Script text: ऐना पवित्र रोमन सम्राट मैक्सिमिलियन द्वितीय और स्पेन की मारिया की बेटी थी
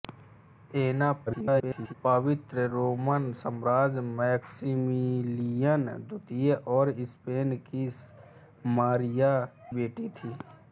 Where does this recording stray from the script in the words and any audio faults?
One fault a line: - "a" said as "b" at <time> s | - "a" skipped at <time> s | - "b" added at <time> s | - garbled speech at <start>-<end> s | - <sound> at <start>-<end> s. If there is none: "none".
- garbled speech at 1.3-1.9 s
- "की" skipped at 9.3 s